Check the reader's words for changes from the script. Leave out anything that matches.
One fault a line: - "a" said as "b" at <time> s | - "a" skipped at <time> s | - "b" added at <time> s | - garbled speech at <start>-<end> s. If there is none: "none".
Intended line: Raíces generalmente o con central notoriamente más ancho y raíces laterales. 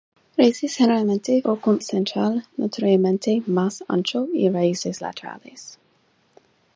none